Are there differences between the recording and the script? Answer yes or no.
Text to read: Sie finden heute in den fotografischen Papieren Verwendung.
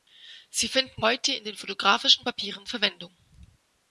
no